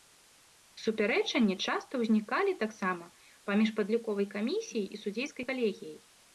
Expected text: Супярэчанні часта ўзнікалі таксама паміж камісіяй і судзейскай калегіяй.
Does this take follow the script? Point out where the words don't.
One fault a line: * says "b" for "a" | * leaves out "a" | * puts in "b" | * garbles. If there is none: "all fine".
* puts in "падліковай"